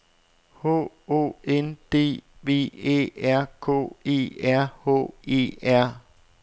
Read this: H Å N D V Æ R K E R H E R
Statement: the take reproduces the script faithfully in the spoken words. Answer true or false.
true